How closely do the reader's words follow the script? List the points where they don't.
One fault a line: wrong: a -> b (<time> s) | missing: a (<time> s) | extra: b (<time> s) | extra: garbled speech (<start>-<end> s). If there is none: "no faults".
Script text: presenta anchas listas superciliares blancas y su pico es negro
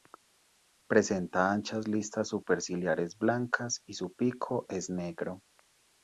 no faults